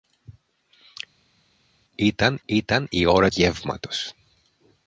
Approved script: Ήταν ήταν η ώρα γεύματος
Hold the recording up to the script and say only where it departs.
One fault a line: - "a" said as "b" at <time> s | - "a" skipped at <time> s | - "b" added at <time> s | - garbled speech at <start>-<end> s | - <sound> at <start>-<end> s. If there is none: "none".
none